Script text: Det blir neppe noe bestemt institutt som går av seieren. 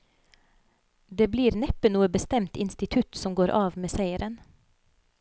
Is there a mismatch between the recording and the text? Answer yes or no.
yes